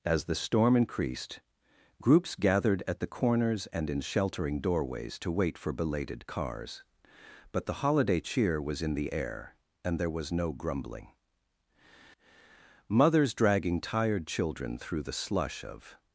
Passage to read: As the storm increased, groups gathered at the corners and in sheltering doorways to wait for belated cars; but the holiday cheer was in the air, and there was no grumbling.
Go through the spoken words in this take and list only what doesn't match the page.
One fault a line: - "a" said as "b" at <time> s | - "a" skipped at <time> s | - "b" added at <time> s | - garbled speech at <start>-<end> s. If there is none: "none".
- "Mothers dragging tired children through the slush of" added at 12.9 s